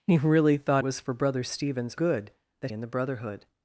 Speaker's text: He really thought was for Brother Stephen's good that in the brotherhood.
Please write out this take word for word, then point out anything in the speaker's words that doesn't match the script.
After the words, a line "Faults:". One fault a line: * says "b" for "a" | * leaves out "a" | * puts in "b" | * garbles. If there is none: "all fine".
He really thought was for Brother Stephen's good that in the brotherhood.
Faults:
all fine